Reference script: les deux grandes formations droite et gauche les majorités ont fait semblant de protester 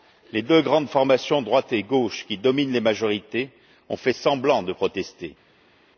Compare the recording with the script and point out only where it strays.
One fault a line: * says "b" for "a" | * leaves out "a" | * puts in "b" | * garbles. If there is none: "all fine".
* puts in "qui dominent"